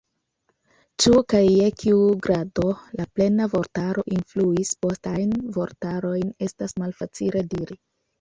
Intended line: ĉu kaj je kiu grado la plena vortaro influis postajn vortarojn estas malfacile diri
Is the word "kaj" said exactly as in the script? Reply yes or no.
yes